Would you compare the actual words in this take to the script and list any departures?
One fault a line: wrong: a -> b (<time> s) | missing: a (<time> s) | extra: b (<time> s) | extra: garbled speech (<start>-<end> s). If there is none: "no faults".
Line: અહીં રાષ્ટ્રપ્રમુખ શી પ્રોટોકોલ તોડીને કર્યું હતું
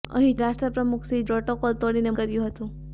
no faults